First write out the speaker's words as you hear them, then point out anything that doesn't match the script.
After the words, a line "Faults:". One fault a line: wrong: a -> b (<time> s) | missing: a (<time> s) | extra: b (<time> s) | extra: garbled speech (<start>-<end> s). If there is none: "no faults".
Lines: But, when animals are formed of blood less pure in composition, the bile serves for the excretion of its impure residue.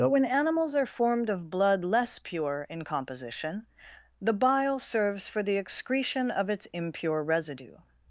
But, when animals are formed of blood less pure in composition, the bile serves for the excretion of its impure residue.
Faults:
no faults